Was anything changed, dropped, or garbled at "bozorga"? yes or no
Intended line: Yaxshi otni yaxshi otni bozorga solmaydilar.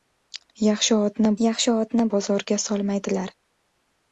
no